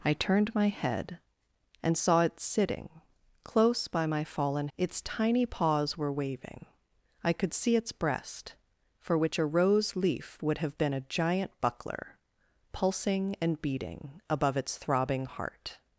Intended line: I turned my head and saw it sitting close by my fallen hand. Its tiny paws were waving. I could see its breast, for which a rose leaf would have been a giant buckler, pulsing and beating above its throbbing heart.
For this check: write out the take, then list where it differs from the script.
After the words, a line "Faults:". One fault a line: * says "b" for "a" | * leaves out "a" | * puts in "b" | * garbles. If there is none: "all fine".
I turned my head and saw it sitting close by my fallen. Its tiny paws were waving. I could see its breast, for which a rose leaf would have been a giant buckler, pulsing and beating above its throbbing heart.
Faults:
* leaves out "hand"